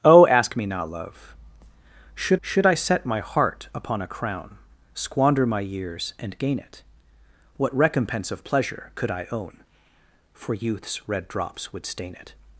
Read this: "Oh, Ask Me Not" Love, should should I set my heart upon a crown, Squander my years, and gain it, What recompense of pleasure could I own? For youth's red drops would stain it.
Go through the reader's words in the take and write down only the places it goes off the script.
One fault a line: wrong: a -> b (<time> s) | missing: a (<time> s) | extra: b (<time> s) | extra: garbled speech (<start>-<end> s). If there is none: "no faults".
no faults